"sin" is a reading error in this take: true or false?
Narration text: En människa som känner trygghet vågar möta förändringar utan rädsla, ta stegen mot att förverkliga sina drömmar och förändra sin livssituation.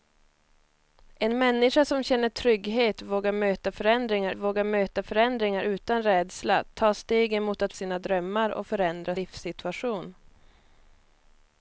true